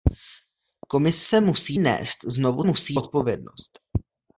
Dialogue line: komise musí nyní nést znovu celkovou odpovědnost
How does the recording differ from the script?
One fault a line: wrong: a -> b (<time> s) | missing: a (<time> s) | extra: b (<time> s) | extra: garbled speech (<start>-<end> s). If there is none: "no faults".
missing: nyní (1.8 s)
wrong: celkovou -> musí (2.6 s)